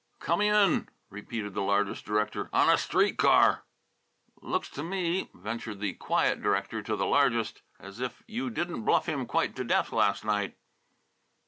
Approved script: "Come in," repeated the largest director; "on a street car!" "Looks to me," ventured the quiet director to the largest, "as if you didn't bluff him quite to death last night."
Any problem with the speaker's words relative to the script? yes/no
no